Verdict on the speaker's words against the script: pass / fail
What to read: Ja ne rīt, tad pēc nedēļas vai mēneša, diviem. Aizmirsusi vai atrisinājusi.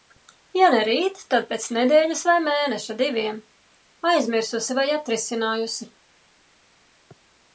pass